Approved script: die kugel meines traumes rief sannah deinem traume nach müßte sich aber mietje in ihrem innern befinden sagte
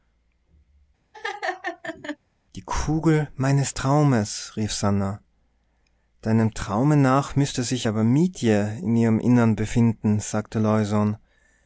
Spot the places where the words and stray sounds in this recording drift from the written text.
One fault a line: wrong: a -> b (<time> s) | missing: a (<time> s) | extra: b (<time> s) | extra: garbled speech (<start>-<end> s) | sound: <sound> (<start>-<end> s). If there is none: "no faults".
sound: laugh (1.1-2.2 s)